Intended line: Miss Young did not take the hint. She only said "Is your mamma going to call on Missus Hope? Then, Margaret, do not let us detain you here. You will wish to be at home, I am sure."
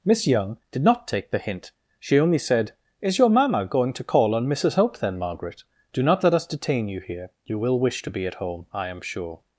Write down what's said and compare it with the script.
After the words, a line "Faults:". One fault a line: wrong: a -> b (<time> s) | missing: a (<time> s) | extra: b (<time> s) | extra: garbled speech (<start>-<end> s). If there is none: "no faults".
Miss Young did not take the hint. She only said "Is your mamma going to call on Missus Hope? Then, Margaret, do not let us detain you here. You will wish to be at home, I am sure."
Faults:
no faults